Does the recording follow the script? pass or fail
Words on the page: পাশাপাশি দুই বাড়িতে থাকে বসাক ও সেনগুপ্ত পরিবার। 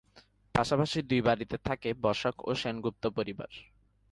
pass